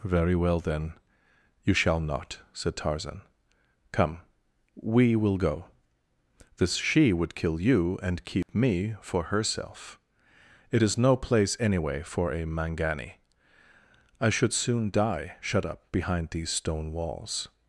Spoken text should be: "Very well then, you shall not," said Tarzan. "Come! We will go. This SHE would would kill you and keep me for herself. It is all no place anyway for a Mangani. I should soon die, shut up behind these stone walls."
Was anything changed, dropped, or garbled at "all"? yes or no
yes